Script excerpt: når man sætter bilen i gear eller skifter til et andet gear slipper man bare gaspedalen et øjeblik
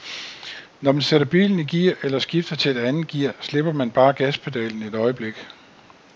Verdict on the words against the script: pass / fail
pass